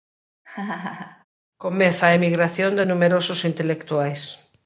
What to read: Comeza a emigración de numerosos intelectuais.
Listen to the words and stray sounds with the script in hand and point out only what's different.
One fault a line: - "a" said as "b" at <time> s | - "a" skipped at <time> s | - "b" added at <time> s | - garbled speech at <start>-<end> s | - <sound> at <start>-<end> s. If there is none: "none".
- laugh at 0.4-1.2 s